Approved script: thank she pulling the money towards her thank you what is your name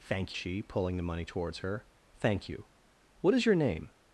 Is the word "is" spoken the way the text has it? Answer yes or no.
yes